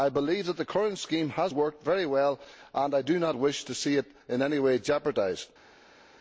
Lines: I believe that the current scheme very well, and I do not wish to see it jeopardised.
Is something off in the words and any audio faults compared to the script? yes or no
yes